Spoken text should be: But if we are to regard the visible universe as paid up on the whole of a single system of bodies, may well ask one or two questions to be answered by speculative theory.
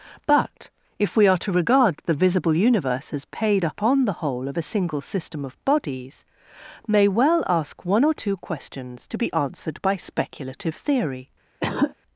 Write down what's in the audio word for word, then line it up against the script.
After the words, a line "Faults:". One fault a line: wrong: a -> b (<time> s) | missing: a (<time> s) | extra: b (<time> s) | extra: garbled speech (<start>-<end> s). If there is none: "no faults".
But if we are to regard the visible universe as paid up on the whole of a single system of bodies, may well ask one or two questions to be answered by speculative theory.
Faults:
no faults